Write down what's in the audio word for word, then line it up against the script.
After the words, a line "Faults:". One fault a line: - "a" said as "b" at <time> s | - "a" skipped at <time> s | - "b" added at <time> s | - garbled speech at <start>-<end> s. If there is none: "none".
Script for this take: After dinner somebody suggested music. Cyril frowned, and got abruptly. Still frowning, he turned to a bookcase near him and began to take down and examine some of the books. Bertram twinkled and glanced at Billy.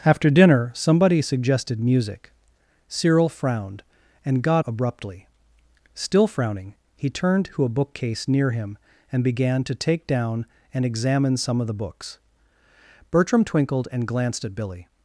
After dinner somebody suggested music. Cyril frowned, and got abruptly. Still frowning, he turned to a bookcase near him and began to take down and examine some of the books. Bertram twinkled and glanced at Billy.
Faults:
none